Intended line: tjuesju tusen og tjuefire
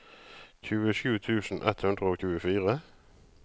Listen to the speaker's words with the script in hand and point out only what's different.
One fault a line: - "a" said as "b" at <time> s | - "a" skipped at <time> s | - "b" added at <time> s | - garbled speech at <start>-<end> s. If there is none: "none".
- "ett hundre" added at 1.7 s